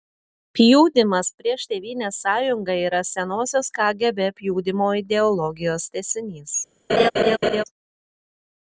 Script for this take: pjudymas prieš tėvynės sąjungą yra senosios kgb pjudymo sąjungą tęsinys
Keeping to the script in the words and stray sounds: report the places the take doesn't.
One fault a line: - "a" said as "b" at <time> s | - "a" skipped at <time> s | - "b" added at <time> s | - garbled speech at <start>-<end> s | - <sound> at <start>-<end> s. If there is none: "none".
- "sąjungą" said as "ideologijos" at 5.0 s
- laugh at 6.9-7.6 s